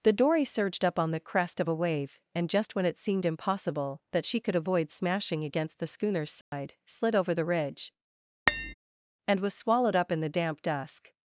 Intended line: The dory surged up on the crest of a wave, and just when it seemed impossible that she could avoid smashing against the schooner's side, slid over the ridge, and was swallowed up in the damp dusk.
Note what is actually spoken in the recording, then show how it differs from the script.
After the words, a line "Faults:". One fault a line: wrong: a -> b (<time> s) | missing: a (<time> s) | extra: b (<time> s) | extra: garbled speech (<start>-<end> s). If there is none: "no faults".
The dory surged up on the crest of a wave, and just when it seemed impossible that she could avoid smashing against the schooner's side, slid over the ridge, and was swallowed up in the damp dusk.
Faults:
no faults